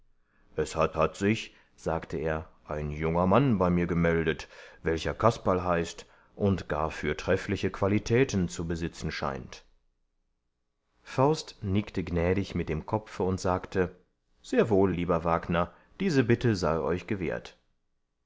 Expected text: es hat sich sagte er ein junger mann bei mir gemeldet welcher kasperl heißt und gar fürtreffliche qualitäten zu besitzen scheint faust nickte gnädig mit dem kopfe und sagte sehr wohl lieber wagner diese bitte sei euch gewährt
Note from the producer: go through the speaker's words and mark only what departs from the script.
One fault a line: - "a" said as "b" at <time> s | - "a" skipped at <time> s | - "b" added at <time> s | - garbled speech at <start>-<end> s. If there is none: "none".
- "hat" added at 1.0 s